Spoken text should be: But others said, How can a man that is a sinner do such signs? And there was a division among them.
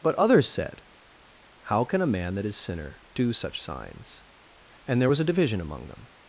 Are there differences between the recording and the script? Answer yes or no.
yes